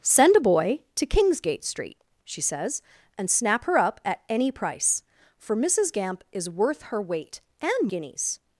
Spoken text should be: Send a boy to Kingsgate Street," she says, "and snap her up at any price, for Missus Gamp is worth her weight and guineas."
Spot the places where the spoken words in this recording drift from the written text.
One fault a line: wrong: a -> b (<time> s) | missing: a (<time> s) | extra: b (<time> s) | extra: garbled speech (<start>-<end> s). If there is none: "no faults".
no faults